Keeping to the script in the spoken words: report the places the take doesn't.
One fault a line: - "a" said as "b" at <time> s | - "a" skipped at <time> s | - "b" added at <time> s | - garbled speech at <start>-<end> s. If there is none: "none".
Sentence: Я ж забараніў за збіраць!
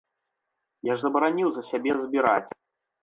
- "сябе" added at 1.7 s